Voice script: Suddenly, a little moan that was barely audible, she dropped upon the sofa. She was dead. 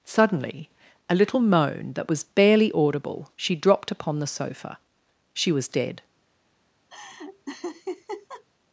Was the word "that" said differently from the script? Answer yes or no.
no